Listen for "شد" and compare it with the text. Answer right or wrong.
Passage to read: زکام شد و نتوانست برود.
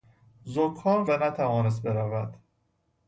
wrong